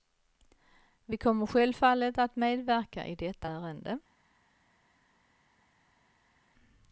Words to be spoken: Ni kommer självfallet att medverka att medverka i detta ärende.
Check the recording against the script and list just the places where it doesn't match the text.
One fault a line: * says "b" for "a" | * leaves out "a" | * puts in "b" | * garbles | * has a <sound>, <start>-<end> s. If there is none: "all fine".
* says "Vi" for "Ni"
* leaves out "att medverka"